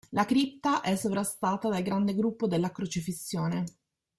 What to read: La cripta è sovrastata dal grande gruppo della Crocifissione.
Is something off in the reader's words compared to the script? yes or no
no